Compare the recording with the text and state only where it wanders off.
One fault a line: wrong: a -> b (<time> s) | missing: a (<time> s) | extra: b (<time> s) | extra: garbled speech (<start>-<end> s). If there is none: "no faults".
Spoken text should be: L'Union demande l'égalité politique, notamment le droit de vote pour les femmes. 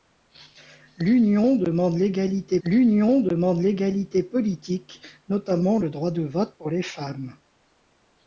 extra: l'union demande l'égalité (2.6 s)